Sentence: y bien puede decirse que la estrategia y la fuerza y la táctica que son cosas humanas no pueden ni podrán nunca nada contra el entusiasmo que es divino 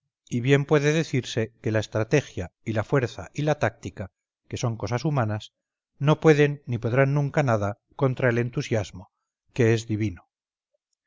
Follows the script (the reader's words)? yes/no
yes